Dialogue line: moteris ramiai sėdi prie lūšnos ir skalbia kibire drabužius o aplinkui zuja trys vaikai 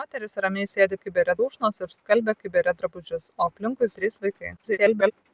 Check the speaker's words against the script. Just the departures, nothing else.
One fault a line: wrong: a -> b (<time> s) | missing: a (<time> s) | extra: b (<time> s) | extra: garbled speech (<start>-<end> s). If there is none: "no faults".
wrong: prie -> kibire (1.0 s)
missing: zuja (3.9 s)
extra: garbled speech (4.6-5.1 s)